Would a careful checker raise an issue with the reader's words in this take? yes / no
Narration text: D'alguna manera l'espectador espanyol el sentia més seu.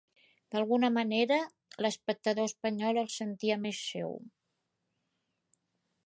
no